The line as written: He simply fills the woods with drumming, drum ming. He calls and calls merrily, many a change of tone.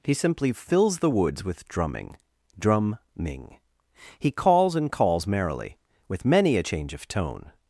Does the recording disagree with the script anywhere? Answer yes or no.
yes